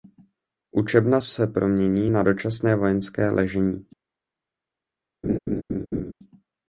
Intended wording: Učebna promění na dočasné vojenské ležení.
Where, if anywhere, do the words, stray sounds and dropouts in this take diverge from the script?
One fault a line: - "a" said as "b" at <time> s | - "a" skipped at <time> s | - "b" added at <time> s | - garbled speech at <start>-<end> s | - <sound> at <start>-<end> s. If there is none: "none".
- "se" added at 1.2 s
- laugh at 5.2-6.1 s